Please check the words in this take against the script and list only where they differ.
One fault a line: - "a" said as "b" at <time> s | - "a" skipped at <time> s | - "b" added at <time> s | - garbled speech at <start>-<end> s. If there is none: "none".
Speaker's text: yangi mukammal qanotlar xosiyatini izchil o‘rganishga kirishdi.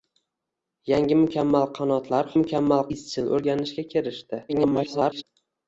- "xosiyatini" said as "mukammal" at 2.4 s
- garbled speech at 4.5-5.2 s